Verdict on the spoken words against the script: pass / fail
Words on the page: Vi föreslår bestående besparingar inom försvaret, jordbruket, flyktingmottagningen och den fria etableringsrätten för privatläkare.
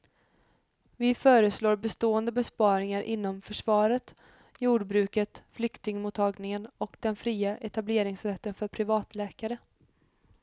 pass